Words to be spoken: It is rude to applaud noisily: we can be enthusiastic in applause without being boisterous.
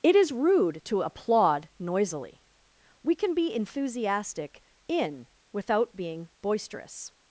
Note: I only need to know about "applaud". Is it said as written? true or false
true